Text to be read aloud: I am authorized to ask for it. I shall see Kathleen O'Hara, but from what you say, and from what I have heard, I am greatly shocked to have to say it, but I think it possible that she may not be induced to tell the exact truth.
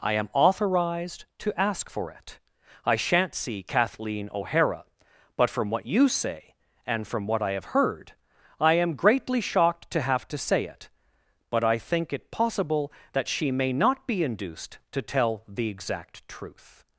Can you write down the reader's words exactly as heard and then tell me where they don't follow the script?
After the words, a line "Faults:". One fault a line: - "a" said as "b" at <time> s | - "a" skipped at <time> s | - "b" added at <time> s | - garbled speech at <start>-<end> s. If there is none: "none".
I am authorized to ask for it. I shan't see Kathleen O'Hara, but from what you say, and from what I have heard, I am greatly shocked to have to say it, but I think it possible that she may not be induced to tell the exact truth.
Faults:
- "shall" said as "shan't" at 3.0 s